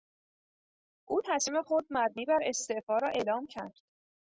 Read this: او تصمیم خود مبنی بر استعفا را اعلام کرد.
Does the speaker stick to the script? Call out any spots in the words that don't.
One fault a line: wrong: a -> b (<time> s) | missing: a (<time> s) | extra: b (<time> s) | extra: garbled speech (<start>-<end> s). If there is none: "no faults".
no faults